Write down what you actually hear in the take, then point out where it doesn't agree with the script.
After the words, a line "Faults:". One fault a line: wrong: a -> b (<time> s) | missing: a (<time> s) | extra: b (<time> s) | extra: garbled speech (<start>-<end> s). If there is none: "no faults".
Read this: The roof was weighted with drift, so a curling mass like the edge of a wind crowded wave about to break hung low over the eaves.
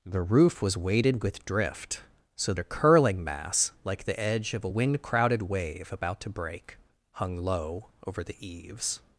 The roof was weighted with drift, so a curling mass like the edge of a wind crowded wave about to break hung low over the eaves.
Faults:
no faults